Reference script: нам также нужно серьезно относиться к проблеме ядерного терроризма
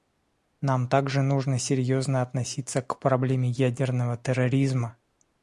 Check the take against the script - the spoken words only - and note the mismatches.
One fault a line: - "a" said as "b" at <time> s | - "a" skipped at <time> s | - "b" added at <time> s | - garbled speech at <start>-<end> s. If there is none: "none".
none